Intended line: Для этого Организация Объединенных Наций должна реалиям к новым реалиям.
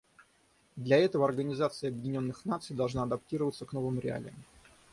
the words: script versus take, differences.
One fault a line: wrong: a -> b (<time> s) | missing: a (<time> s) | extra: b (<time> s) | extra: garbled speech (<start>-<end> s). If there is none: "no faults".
wrong: реалиям -> адаптироваться (3.0 s)